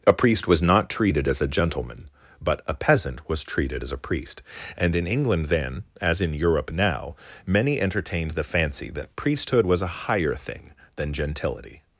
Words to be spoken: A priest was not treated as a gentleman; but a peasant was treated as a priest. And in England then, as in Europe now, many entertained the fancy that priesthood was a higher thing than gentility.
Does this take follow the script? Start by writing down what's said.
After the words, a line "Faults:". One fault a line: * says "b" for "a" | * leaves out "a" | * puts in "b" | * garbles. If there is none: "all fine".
A priest was not treated as a gentleman; but a peasant was treated as a priest. And in England then, as in Europe now, many entertained the fancy that priesthood was a higher thing than gentility.
Faults:
all fine